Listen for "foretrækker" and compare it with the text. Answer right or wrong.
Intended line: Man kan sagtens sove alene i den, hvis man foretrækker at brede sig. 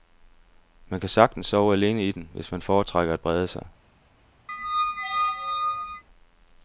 right